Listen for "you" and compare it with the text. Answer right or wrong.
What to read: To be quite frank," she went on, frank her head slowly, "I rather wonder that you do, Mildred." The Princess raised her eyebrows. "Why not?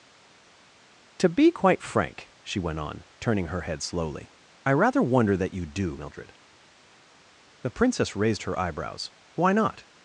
right